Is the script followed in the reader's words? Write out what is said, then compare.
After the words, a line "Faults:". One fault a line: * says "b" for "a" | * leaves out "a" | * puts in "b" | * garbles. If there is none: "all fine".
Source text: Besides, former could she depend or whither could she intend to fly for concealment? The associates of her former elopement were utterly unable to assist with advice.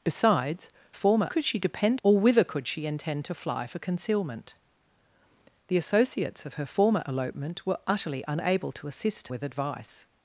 Besides, former could she depend or whither could she intend to fly for concealment? The associates of her former elopement were utterly unable to assist with advice.
Faults:
all fine